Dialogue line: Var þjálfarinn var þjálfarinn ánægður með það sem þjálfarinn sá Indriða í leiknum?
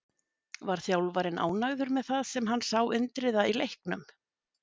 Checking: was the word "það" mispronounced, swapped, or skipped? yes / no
no